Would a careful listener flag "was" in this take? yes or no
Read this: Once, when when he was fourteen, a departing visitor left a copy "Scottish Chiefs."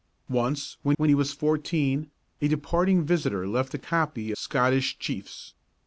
no